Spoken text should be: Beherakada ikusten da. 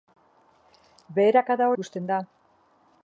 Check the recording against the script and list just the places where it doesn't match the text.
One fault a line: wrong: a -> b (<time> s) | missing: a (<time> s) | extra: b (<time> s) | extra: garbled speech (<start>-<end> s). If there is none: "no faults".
no faults